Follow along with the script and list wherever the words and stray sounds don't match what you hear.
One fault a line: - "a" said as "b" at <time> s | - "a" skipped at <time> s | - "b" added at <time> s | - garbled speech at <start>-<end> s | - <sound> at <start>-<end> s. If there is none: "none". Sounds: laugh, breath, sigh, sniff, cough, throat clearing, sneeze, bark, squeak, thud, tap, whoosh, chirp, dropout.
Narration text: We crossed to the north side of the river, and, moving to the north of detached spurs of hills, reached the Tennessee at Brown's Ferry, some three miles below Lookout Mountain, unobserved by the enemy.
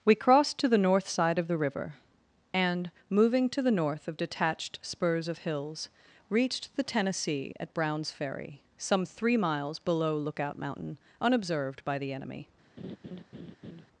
- laugh at 12.8-13.9 s